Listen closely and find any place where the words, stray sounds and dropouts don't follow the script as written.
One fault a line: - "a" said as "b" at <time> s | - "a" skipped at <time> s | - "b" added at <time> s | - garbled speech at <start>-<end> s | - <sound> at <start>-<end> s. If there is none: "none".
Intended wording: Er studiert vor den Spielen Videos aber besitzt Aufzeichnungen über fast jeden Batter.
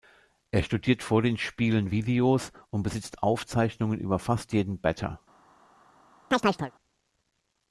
- "aber" said as "und" at 2.7 s
- chirp at 6.3-6.7 s